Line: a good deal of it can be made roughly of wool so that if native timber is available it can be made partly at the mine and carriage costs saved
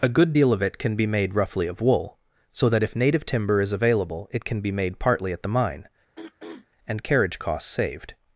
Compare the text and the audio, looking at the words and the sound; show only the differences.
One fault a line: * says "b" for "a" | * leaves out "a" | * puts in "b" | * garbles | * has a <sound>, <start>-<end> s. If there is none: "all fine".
* has a throat clearing, 6.2-6.7 s